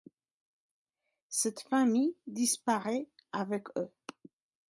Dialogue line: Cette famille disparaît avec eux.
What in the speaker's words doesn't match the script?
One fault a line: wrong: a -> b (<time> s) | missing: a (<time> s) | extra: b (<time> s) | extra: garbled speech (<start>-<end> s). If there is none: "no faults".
no faults